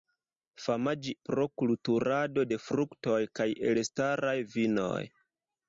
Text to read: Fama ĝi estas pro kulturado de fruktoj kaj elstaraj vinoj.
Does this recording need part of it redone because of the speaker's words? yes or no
yes